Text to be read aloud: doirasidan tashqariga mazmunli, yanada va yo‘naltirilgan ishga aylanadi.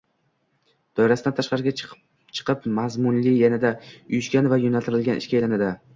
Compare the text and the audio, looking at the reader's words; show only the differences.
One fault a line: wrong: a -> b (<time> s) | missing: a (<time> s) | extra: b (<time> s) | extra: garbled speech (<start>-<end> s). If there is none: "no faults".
extra: chiqib (1.8 s)
extra: uyushgan (3.9 s)